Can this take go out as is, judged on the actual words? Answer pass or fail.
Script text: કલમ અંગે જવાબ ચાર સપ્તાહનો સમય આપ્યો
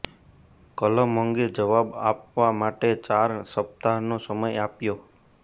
fail